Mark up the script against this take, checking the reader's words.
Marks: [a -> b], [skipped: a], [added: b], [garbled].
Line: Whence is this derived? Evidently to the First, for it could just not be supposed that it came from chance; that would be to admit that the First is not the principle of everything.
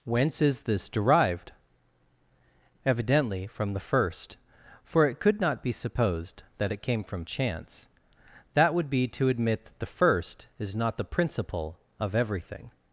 Whence is this derived? Evidently [to -> from] the First, for it could [skipped: just] not be supposed that it came from chance; that would be to admit that the First is not the principle of everything.